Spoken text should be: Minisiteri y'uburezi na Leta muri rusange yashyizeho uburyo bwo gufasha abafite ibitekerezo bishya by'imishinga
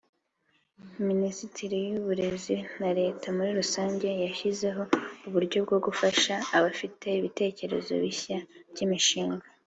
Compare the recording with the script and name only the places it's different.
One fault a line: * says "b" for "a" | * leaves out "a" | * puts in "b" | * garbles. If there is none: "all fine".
all fine